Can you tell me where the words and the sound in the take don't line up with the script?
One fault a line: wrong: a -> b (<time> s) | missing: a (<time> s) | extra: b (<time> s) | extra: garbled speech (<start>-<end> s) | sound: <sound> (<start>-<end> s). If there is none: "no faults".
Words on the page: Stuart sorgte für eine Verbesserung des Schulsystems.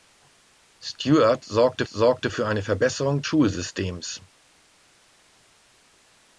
extra: sorgte (1.9 s)
missing: des (3.2 s)